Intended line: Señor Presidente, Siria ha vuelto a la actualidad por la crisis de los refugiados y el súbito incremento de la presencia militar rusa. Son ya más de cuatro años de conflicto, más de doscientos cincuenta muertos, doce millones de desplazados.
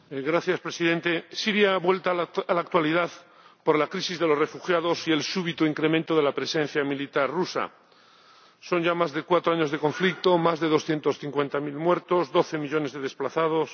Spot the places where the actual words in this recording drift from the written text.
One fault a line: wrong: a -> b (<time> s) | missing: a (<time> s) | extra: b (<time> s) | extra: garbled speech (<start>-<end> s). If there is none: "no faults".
extra: mil (11.6 s)